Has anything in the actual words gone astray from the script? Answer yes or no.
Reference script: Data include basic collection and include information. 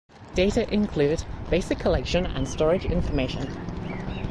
yes